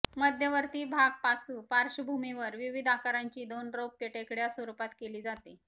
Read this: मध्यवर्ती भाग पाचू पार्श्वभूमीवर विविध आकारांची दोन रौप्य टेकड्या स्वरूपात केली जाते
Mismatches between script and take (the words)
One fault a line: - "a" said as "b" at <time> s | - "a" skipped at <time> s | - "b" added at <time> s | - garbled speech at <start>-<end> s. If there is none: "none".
none